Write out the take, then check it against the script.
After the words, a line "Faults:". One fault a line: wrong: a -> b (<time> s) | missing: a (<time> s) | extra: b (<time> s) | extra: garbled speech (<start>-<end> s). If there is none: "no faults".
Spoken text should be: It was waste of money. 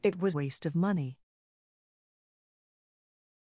It was waste of money.
Faults:
no faults